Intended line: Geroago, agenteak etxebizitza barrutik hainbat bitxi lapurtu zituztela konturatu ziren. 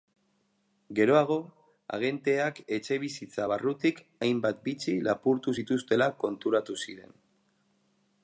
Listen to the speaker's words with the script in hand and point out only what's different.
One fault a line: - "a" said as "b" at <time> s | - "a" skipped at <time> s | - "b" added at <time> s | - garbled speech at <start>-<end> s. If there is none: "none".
none